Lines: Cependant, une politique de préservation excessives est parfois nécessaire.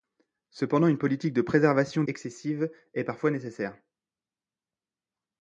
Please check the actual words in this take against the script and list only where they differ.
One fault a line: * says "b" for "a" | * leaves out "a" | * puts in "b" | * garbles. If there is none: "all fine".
all fine